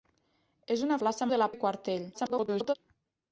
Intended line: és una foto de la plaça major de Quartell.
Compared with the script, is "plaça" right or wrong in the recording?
wrong